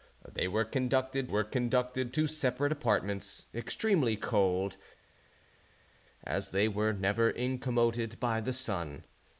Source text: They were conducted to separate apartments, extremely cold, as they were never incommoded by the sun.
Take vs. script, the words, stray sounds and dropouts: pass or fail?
fail